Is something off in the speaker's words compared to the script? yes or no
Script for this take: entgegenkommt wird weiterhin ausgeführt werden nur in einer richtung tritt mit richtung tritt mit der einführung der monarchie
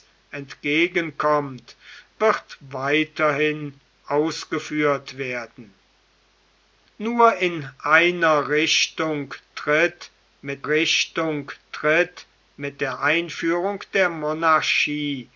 no